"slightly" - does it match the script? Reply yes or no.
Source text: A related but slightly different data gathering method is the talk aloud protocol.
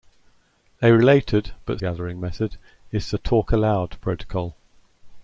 no